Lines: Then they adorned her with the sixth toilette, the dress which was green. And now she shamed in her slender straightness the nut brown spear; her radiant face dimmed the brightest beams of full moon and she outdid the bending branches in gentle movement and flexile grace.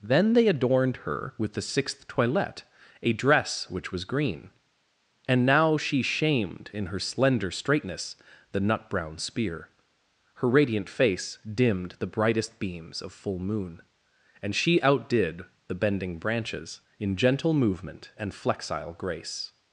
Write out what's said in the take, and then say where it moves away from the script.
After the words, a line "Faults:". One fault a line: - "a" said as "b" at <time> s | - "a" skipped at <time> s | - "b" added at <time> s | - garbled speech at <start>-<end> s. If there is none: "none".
Then they adorned her with the sixth toilette, a dress which was green. And now she shamed in her slender straightness the nut brown spear; her radiant face dimmed the brightest beams of full moon and she outdid the bending branches in gentle movement and flexile grace.
Faults:
- "the" said as "a" at 3.0 s